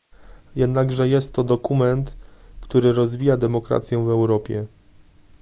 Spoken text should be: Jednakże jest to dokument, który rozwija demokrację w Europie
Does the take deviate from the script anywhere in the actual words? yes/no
no